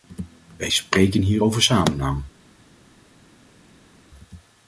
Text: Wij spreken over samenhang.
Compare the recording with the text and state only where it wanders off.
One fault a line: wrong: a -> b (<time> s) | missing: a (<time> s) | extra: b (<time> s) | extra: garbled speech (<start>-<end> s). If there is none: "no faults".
extra: hier (1.2 s)